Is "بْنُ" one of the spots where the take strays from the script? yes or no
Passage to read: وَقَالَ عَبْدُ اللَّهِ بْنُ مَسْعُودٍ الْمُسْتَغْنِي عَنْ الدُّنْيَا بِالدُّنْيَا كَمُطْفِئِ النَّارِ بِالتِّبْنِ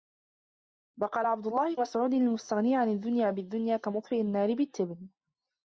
yes